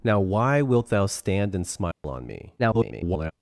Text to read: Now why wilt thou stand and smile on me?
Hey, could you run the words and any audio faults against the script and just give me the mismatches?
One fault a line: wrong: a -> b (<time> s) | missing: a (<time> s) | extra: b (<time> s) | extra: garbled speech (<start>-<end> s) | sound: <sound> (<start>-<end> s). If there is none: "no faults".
sound: dropout (1.9-2.0 s)
extra: garbled speech (2.6-3.3 s)